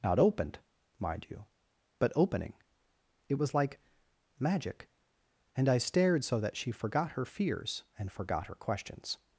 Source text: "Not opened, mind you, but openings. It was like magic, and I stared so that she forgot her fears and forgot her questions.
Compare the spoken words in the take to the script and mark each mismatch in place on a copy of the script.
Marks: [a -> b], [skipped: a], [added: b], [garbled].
"Not opened, mind you, but [openings. -> opening] It was like magic, and I stared so that she forgot her fears and forgot her questions.